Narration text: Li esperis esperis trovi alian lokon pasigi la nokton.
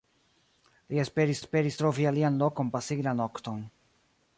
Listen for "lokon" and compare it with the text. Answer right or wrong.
right